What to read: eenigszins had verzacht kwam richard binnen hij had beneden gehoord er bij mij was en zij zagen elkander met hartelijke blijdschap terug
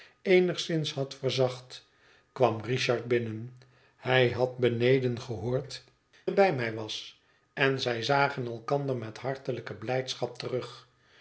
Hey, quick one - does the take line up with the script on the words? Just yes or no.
yes